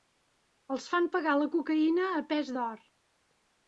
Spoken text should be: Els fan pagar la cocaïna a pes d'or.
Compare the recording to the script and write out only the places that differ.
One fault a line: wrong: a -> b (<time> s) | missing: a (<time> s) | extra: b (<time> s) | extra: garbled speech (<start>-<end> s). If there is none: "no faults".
no faults